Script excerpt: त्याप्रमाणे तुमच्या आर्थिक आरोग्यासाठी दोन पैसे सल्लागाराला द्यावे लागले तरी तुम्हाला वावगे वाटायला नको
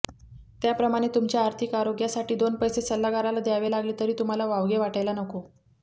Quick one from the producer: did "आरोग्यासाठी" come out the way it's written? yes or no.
yes